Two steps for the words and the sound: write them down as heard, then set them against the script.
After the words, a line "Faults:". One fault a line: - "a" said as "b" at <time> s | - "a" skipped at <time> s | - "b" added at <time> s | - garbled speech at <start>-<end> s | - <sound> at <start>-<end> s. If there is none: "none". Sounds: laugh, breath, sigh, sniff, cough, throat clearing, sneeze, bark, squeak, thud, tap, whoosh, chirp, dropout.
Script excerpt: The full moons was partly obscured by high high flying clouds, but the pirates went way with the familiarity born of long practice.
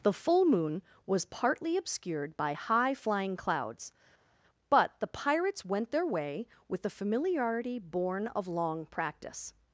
The full moon was partly obscured by high flying clouds, but the pirates went their way with the familiarity born of long practice.
Faults:
- "moons" said as "moon" at 0.5 s
- "high" skipped at 3.0 s
- "their" added at 5.9 s